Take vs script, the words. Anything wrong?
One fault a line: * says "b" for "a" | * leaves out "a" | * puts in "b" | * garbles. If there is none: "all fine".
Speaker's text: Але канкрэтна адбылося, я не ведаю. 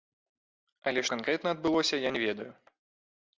all fine